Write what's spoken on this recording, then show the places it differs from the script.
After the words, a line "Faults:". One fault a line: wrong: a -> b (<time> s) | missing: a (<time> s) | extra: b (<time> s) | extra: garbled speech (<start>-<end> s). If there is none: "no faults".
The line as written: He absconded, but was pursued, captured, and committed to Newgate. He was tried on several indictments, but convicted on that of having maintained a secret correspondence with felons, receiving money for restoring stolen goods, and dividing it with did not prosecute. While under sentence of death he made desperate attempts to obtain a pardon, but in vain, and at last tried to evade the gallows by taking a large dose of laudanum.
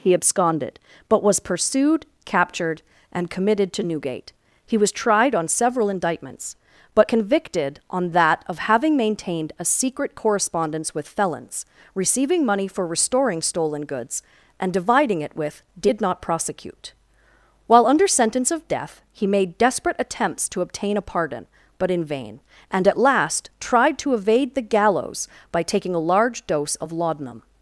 He absconded, but was pursued, captured, and committed to Newgate. He was tried on several indictments, but convicted on that of having maintained a secret correspondence with felons, receiving money for restoring stolen goods, and dividing it with did not prosecute. While under sentence of death he made desperate attempts to obtain a pardon, but in vain, and at last tried to evade the gallows by taking a large dose of laudanum.
Faults:
no faults